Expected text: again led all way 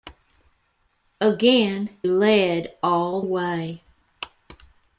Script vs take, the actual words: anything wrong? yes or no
no